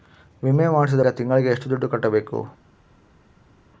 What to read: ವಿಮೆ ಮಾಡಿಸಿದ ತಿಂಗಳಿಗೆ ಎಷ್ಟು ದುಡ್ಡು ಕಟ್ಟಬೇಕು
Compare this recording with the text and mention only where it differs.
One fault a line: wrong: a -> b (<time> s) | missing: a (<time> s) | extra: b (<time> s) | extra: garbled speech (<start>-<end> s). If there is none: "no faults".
no faults